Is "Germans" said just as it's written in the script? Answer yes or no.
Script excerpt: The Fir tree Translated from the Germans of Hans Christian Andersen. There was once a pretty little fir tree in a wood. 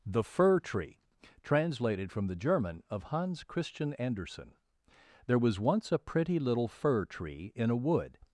no